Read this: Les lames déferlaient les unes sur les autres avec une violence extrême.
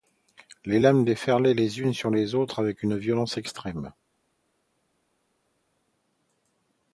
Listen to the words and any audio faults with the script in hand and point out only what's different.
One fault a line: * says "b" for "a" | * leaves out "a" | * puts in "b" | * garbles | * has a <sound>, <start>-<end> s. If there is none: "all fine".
all fine